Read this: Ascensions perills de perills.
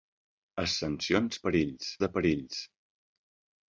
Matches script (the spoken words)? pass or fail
pass